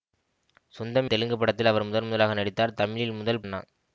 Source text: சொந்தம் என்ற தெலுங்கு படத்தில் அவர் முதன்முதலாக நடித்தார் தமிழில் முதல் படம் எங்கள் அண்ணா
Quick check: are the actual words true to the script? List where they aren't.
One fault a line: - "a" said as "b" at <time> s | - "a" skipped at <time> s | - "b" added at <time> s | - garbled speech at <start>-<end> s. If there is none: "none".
- "என்ற" skipped at 1.1 s
- "படம் எங்கள்" skipped at 3.4 s